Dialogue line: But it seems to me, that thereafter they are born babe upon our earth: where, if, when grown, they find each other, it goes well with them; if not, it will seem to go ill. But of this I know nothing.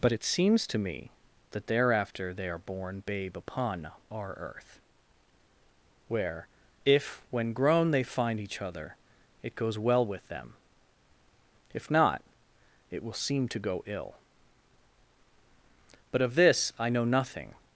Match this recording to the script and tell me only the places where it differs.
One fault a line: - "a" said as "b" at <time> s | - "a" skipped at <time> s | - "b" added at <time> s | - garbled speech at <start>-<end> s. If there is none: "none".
none